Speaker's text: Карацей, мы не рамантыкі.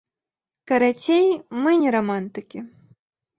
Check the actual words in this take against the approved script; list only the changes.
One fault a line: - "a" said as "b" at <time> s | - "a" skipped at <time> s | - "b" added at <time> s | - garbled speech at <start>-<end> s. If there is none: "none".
none